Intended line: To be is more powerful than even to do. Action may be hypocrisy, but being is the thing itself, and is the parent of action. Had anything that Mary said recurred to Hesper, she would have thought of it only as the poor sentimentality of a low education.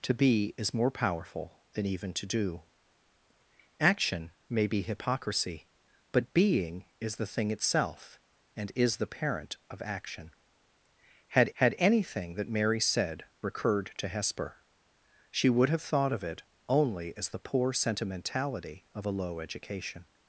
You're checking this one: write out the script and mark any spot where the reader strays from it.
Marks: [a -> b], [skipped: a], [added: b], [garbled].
To be is more powerful than even to do. Action may be hypocrisy, but being is the thing itself, and is the parent of action. Had [added: had] anything that Mary said recurred to Hesper, she would have thought of it only as the poor sentimentality of a low education.